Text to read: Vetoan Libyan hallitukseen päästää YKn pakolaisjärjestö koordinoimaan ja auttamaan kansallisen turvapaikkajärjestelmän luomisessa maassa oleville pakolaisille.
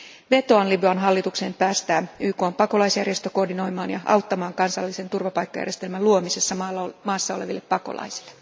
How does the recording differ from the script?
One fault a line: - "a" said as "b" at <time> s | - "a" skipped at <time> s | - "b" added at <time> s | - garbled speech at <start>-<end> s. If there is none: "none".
none